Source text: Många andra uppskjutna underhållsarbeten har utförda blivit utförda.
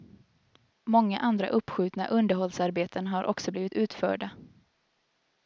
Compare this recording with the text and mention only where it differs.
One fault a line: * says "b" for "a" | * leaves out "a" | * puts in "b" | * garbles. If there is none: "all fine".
* says "också" for "utförda"